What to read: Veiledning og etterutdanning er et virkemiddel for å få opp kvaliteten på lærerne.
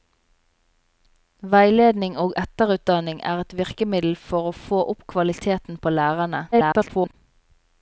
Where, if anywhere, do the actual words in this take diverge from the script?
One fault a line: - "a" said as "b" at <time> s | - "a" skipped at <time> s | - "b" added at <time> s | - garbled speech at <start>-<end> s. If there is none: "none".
- garbled speech at 6.5-7.1 s